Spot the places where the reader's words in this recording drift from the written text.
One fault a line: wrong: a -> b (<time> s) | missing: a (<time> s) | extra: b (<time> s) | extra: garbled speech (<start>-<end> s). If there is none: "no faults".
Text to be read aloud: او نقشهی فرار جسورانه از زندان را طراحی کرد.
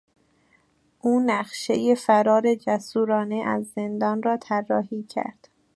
no faults